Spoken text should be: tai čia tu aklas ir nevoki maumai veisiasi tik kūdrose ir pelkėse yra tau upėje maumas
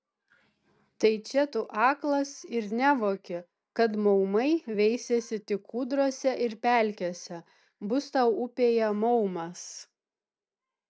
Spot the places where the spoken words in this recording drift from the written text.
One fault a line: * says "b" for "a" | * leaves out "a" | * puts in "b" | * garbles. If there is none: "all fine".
* puts in "kad"
* says "bus" for "yra"